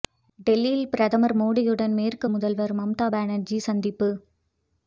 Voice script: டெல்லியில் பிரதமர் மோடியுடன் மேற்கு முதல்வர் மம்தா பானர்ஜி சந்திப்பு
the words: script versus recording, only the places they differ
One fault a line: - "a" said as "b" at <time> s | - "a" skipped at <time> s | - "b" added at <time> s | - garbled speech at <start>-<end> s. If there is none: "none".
none